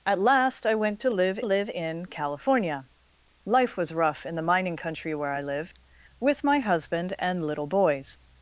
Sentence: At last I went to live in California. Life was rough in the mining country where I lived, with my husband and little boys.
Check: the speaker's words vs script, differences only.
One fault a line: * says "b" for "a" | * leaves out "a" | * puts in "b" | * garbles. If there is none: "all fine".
* puts in "live"